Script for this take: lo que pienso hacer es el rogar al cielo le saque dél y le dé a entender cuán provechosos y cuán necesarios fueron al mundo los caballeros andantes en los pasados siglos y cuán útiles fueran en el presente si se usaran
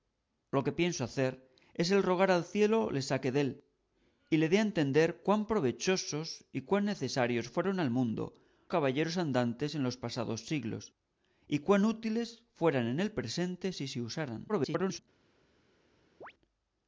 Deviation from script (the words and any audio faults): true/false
true